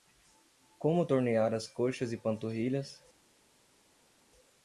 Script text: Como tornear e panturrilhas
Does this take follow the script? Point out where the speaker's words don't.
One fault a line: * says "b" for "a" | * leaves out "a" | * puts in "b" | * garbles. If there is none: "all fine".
* puts in "as coxas"